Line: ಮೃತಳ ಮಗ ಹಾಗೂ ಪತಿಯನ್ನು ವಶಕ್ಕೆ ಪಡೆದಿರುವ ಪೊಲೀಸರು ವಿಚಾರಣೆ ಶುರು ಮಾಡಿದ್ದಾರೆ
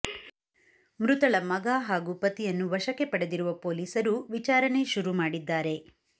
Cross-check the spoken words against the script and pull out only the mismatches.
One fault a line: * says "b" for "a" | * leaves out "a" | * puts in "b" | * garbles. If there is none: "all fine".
all fine